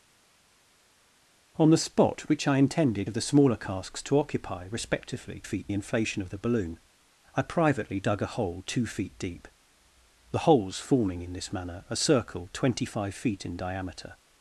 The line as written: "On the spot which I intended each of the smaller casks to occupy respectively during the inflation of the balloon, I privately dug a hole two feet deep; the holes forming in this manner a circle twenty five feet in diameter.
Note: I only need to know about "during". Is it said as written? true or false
false